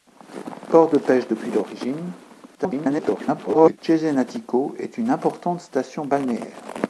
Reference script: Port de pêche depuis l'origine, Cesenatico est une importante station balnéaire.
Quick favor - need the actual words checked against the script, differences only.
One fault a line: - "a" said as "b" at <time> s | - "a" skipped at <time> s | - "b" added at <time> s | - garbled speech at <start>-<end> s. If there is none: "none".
- garbled speech at 2.6-3.8 s